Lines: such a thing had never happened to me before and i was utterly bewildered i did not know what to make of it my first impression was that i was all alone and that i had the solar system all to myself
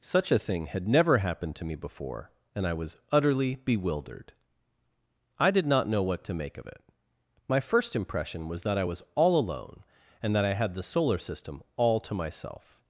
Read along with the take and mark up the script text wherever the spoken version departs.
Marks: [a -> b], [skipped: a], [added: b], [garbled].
such a thing had never happened to me before and i was utterly bewildered i did not know what to make of it my first impression was that i was all alone and that i had the solar system all to myself